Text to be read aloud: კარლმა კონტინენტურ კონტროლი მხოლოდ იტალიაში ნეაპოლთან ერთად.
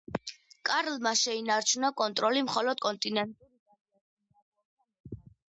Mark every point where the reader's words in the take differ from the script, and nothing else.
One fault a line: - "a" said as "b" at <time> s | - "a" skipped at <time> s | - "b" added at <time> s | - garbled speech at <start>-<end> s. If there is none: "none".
- "კონტინენტურ" said as "შეინარჩუნა" at 1.2 s
- "კონტინენტურ" added at 2.9 s